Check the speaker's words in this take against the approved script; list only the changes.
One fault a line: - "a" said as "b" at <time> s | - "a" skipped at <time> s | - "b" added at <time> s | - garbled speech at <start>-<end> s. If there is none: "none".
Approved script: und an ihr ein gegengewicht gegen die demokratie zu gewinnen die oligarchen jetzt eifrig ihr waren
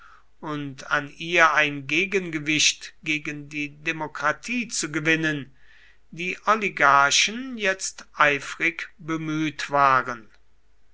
- "ihr" said as "bemüht" at 9.0 s